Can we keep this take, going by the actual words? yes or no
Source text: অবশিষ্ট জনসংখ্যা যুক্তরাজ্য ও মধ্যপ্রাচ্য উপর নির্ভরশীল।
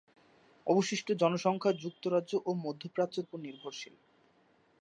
yes